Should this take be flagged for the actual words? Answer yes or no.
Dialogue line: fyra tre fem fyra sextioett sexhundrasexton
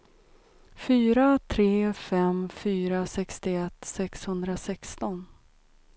no